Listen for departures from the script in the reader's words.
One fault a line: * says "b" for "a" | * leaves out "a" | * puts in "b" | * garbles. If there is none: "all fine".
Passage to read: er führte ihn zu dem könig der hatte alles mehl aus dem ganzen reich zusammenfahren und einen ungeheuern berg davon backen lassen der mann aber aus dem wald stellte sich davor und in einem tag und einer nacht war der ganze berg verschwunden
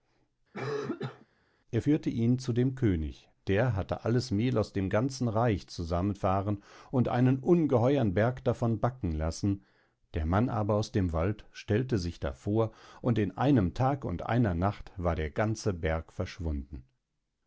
all fine